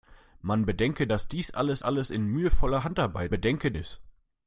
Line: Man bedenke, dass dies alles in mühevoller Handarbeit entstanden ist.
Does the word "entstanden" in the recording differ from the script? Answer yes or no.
yes